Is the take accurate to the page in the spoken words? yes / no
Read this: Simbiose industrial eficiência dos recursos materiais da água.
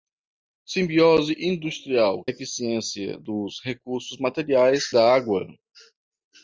yes